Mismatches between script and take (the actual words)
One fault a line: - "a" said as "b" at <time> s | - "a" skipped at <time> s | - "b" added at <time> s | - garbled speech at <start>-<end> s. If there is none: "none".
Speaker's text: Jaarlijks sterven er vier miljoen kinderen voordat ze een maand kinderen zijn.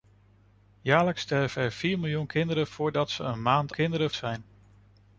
none